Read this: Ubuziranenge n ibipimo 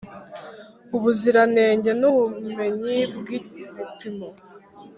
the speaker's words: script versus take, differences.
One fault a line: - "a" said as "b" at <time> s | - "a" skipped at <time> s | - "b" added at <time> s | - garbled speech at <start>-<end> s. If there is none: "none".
- "ubumenyi bw" added at 2.1 s